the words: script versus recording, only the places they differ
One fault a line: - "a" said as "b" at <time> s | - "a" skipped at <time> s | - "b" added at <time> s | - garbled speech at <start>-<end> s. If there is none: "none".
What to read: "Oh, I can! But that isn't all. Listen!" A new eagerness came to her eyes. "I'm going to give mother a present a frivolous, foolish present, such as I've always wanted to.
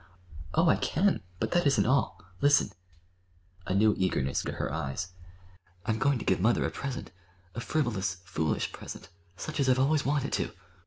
- "came" skipped at 4.4 s